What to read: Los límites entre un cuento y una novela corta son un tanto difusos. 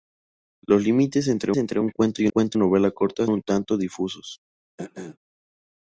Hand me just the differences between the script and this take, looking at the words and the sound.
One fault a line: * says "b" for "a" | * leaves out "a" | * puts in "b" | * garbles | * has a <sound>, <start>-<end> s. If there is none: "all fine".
* puts in "entre"
* says "cuento" for "una"
* leaves out "son"
* has a throat clearing, 4.8-5.2 s